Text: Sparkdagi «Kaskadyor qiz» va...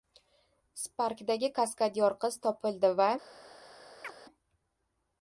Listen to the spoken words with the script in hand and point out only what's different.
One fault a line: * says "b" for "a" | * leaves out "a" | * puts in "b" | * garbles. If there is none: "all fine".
* puts in "topildi"